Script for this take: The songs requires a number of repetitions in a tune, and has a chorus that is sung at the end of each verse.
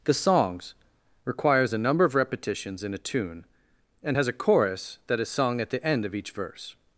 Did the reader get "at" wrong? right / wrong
right